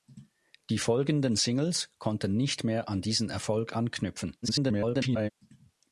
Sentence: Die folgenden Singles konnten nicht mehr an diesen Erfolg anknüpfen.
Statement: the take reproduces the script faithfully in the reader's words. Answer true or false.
false